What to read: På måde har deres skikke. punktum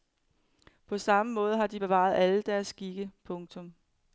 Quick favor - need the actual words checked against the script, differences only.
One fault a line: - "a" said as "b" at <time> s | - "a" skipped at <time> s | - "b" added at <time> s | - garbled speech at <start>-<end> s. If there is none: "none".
- "samme" added at 1.0 s
- "de bevaret alle" added at 1.7 s